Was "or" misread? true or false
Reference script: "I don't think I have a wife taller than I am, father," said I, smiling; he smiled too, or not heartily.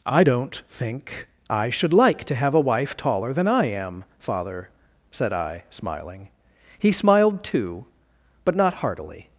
true